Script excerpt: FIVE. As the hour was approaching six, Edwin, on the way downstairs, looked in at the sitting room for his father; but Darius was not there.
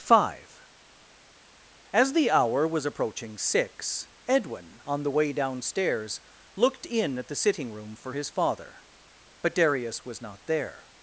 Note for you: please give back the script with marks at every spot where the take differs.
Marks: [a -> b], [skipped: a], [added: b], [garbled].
FIVE. As the hour was approaching six, Edwin, on the way downstairs, looked in at the sitting room for his father; but Darius was not there.